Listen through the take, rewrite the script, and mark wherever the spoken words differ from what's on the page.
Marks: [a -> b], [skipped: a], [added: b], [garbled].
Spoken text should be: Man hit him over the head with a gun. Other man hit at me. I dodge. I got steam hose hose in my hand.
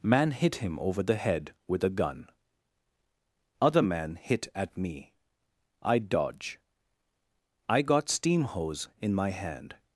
Man hit him over the head with a gun. Other man hit at me. I dodge. I got steam hose [skipped: hose] in my hand.